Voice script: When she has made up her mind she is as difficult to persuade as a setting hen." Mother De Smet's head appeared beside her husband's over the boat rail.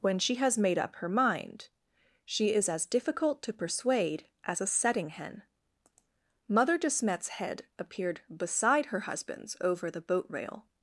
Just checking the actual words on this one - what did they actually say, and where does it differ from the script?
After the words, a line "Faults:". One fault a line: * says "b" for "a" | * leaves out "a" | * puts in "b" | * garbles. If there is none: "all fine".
When she has made up her mind she is as difficult to persuade as a setting hen." Mother De Smet's head appeared beside her husband's over the boat rail.
Faults:
all fine